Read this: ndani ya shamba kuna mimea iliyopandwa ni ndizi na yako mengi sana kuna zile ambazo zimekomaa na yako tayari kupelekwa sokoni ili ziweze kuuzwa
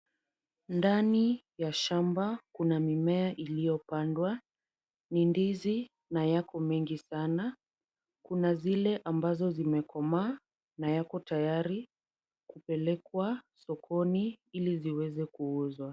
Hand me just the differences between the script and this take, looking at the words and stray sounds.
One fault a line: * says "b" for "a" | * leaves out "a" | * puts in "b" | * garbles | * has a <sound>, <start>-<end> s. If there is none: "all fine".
all fine